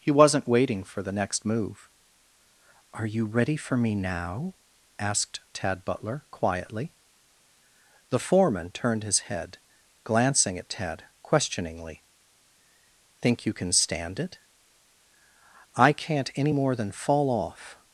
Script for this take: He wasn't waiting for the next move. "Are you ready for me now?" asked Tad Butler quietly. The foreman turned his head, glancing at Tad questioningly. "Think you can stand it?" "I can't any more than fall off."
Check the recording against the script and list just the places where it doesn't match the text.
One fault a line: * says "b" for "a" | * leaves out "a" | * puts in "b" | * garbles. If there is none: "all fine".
all fine